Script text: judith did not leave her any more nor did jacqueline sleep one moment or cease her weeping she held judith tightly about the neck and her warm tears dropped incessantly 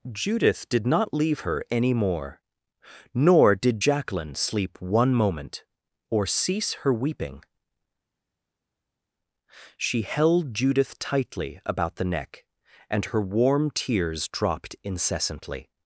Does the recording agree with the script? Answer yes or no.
yes